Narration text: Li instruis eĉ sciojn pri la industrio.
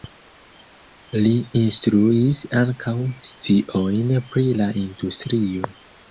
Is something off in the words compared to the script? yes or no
yes